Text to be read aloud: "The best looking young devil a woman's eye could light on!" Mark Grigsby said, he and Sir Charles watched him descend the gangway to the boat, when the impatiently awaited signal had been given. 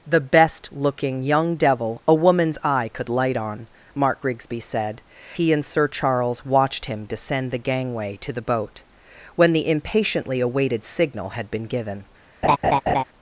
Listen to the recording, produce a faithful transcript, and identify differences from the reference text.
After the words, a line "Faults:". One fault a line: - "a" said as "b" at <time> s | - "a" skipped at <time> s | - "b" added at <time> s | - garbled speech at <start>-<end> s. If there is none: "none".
"The best looking young devil a woman's eye could light on!" Mark Grigsby said, he and Sir Charles watched him descend the gangway to the boat, when the impatiently awaited signal had been given.
Faults:
none